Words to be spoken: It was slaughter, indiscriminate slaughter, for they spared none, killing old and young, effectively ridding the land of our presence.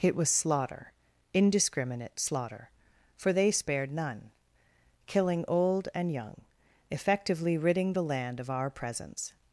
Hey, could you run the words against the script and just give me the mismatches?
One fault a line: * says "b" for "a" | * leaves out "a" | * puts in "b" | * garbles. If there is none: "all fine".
all fine